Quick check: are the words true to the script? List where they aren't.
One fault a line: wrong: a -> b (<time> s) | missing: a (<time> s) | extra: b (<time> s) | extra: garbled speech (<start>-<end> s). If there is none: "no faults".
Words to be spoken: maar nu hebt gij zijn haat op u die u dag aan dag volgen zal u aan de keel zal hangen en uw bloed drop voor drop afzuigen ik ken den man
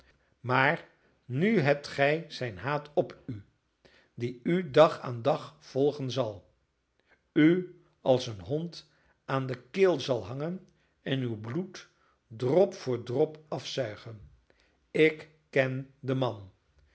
extra: als een hond (8.0 s)